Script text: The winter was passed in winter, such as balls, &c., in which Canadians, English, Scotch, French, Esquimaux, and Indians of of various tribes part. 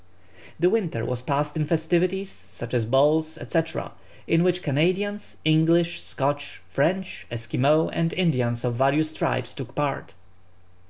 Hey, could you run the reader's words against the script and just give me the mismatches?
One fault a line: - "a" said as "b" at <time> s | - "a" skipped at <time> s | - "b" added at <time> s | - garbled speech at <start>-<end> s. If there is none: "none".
- "winter" said as "festivities" at 1.6 s
- "of" skipped at 8.7 s
- "took" added at 9.5 s